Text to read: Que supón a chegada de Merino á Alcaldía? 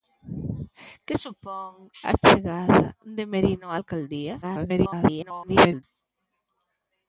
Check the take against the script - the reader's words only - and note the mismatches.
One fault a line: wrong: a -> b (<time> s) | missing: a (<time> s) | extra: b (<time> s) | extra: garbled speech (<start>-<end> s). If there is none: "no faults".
extra: garbled speech (4.4-5.8 s)